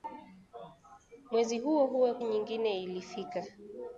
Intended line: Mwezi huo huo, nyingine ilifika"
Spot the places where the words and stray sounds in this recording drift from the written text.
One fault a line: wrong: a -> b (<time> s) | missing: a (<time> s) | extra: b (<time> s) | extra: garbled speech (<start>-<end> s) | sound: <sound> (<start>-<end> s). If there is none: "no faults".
no faults